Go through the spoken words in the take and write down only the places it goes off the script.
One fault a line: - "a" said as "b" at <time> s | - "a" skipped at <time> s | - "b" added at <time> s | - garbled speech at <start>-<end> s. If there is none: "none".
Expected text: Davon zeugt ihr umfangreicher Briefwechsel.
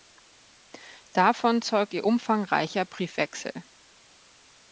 none